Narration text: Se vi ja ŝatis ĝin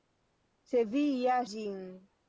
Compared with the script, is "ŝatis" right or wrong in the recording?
wrong